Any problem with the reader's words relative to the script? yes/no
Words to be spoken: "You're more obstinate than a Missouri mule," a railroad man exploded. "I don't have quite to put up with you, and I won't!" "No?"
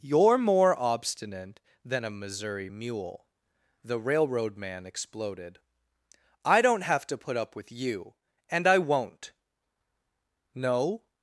yes